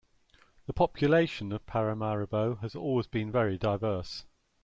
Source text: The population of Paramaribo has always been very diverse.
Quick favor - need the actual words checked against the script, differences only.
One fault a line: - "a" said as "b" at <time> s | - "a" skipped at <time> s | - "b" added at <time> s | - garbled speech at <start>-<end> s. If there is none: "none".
none